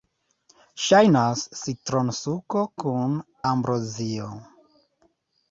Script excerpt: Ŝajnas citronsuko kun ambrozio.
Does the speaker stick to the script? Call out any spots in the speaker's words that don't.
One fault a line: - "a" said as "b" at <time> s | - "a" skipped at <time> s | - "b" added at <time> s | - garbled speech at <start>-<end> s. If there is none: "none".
none